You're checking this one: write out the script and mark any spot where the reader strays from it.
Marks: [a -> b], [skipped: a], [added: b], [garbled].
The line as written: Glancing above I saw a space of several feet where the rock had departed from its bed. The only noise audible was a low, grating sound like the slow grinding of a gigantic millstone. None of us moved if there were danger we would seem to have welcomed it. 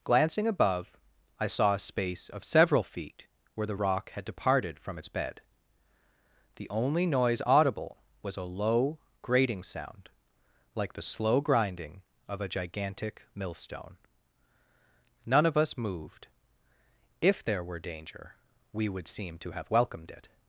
Glancing above I saw a space of several feet where the rock had departed from its bed. The only noise audible was a low, grating sound like the slow grinding of a gigantic millstone. None of us moved if there were danger we would seem to have welcomed it.